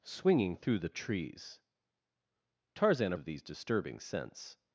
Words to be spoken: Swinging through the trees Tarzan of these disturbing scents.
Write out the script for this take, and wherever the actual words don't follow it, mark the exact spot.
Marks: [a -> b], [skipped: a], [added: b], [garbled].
Swinging through the trees Tarzan of these disturbing scents.